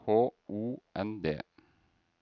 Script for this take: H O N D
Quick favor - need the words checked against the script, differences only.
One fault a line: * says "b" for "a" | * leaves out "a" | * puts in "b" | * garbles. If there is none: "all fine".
all fine